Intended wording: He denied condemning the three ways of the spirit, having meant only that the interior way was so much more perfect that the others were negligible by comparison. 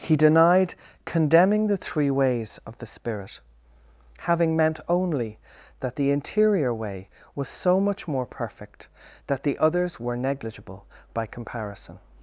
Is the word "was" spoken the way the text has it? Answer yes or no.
yes